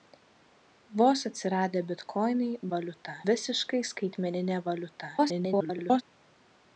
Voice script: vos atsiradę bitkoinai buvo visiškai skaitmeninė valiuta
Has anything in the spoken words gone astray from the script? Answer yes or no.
yes